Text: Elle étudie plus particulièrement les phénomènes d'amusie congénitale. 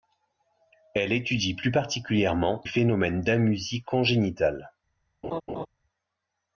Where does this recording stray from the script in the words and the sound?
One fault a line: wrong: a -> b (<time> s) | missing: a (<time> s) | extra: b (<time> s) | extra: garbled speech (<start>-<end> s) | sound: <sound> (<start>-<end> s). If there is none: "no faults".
missing: les (2.6 s)
sound: laugh (5.2-5.7 s)